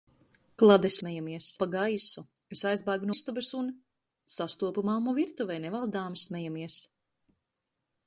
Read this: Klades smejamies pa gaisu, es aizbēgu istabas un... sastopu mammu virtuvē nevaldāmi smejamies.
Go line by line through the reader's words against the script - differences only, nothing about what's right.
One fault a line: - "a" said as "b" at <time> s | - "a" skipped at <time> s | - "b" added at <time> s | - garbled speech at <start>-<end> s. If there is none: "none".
none